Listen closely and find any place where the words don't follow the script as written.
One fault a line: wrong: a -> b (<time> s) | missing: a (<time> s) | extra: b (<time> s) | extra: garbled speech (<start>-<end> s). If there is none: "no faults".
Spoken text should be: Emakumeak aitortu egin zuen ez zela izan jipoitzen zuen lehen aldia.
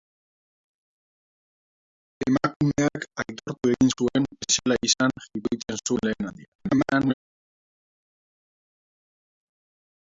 extra: garbled speech (6.6-7.1 s)